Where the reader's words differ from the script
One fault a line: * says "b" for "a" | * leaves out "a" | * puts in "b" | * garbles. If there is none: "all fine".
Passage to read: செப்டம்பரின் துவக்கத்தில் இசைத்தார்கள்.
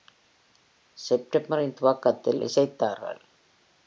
all fine